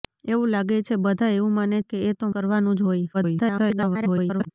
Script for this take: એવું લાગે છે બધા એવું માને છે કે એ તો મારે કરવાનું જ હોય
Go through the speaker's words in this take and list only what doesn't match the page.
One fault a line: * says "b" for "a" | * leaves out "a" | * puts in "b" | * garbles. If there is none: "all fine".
* leaves out "છે"
* leaves out "મારે"
* garbles